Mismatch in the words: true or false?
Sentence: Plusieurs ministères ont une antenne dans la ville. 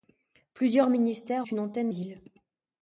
true